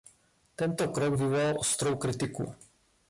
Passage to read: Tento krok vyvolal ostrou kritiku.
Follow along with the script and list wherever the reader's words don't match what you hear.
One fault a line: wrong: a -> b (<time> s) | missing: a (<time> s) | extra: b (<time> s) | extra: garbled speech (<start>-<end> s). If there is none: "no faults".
no faults